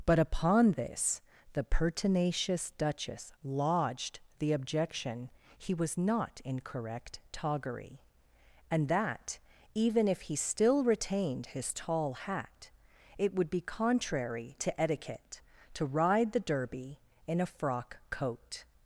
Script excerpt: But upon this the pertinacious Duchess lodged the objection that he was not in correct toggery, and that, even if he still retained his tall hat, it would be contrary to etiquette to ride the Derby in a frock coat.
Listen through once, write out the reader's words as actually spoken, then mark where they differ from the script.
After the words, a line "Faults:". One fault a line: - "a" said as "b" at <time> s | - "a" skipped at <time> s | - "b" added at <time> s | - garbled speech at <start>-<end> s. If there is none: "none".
But upon this the pertinacious Duchess lodged the objection he was not in correct toggery, and that, even if he still retained his tall hat, it would be contrary to etiquette to ride the Derby in a frock coat.
Faults:
- "that" skipped at 5.3 s